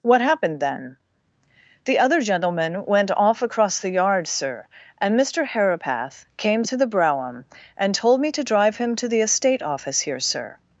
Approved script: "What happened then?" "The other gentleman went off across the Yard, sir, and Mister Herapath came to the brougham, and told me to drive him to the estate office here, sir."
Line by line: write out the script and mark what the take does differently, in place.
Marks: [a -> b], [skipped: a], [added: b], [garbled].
"What happened then?" "The other gentleman went off across the Yard, sir, and Mister Herapath came to the brougham, and told me to drive him to the estate office here, sir."